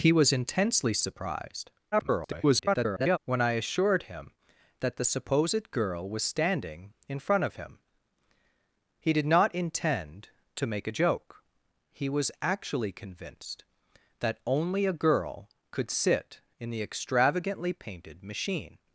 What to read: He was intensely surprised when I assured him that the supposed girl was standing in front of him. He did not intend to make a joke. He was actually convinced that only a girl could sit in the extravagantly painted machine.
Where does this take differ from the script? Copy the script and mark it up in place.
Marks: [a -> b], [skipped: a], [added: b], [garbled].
He was intensely surprised [garbled] when I assured him that the supposed girl was standing in front of him. He did not intend to make a joke. He was actually convinced that only a girl could sit in the extravagantly painted machine.